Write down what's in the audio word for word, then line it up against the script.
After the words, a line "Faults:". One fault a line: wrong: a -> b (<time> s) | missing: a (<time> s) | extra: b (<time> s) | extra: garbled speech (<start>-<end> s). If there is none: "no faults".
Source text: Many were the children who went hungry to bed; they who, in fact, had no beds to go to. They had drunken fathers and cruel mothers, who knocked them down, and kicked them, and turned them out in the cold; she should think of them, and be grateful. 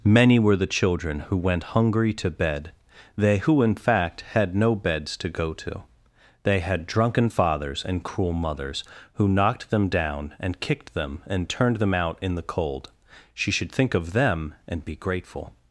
Many were the children who went hungry to bed; they who, in fact, had no beds to go to. They had drunken fathers and cruel mothers, who knocked them down, and kicked them, and turned them out in the cold; she should think of them, and be grateful.
Faults:
no faults